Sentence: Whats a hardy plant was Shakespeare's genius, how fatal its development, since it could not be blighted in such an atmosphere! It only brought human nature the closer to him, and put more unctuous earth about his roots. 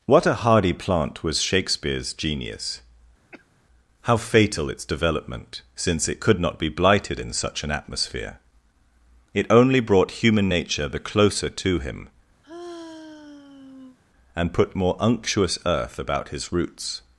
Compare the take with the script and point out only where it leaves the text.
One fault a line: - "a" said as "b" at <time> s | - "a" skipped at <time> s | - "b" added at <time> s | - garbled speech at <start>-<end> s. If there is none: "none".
- "Whats" said as "What" at 0.1 s